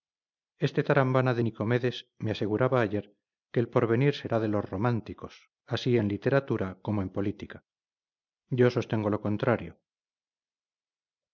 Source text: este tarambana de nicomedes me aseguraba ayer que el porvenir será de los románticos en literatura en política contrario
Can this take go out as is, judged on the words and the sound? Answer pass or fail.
fail